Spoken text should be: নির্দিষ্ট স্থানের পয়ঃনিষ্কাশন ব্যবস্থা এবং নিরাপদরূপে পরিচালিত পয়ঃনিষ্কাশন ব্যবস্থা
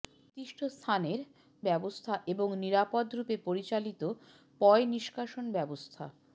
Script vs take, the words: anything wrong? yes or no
yes